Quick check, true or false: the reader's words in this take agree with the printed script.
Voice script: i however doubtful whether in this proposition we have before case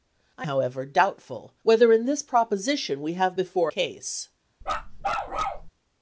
true